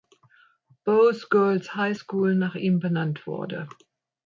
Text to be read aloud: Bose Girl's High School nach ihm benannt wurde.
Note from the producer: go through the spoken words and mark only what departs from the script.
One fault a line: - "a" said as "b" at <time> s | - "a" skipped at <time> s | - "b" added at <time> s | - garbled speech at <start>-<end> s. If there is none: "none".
none